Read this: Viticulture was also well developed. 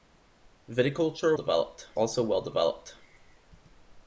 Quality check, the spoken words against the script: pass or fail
fail